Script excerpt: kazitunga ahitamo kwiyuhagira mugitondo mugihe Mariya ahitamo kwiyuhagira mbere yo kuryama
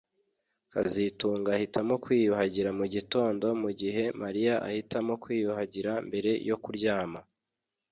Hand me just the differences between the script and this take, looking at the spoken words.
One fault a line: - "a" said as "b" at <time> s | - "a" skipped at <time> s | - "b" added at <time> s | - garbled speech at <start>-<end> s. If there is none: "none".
none